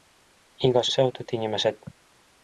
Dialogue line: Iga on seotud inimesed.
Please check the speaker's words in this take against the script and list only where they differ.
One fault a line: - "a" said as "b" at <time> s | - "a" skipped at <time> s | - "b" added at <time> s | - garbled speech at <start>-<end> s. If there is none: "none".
none